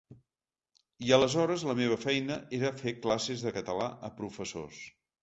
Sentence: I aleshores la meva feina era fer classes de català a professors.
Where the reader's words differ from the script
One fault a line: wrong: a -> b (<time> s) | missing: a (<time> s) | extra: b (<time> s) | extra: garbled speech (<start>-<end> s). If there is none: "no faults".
no faults